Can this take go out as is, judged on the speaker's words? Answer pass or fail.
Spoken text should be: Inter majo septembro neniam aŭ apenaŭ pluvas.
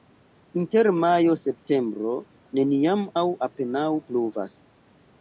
pass